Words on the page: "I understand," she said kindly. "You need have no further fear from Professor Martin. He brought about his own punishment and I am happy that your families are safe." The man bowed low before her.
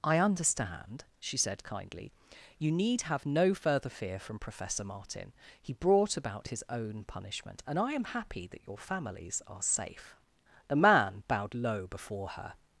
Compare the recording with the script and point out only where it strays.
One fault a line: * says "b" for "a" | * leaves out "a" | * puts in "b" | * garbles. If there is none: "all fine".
all fine